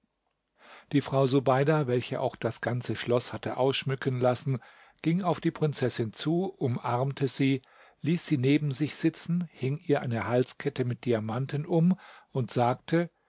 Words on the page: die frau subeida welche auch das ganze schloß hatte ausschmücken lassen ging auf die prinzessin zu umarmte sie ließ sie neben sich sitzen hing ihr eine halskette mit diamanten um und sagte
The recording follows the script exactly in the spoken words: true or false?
true